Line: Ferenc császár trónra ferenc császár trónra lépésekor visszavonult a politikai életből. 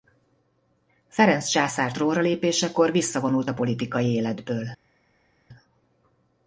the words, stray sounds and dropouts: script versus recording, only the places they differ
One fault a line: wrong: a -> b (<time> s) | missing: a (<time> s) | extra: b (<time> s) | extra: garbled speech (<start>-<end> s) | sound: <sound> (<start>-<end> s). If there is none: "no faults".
missing: ferenc császár trónra (2.2 s)